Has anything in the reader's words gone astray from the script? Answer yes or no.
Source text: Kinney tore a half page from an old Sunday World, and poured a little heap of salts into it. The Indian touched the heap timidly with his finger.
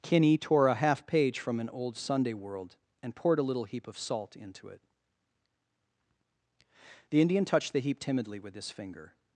yes